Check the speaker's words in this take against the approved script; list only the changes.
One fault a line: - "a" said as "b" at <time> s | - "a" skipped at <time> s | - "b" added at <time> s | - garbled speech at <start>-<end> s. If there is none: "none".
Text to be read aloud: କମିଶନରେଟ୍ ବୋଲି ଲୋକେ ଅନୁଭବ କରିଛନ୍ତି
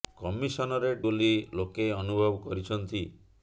none